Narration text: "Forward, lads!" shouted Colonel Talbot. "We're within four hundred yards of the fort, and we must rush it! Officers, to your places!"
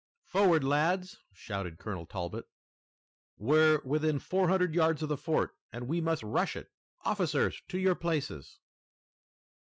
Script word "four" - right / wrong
right